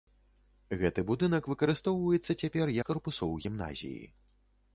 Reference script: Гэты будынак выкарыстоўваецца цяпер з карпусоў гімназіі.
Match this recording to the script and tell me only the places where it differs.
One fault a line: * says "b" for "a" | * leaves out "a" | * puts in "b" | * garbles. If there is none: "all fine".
all fine